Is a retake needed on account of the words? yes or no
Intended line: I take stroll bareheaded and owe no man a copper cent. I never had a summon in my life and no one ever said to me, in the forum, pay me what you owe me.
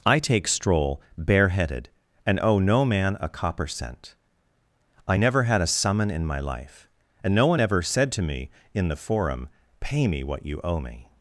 no